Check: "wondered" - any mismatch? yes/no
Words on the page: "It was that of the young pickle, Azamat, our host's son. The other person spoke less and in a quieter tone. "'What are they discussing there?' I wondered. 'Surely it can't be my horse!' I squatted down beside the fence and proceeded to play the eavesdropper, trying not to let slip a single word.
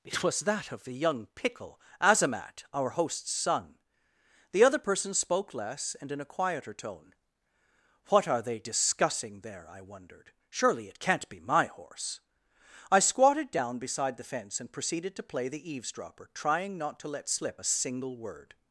no